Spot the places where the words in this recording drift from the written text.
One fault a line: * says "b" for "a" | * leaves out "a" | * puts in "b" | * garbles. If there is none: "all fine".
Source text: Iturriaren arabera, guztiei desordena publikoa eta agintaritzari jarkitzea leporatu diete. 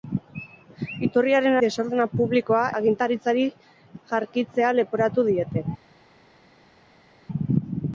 * leaves out "arabera guztiei"
* leaves out "eta"